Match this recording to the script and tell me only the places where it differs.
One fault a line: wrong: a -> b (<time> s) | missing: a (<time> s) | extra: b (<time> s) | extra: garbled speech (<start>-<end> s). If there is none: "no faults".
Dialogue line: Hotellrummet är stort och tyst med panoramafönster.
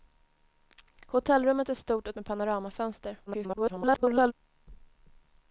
missing: tyst (2.1 s)
extra: garbled speech (3.3-4.3 s)